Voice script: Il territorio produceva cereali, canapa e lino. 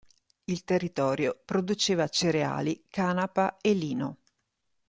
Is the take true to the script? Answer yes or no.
yes